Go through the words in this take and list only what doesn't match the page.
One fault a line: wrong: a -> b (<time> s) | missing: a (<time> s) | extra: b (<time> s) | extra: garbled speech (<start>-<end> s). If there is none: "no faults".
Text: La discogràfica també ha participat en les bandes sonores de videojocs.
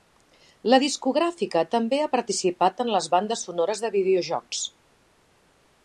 no faults